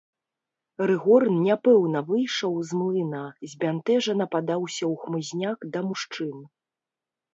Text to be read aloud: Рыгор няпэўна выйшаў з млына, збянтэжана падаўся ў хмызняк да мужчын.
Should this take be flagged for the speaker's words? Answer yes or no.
no